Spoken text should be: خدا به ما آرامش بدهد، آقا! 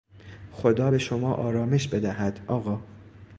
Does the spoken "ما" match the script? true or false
false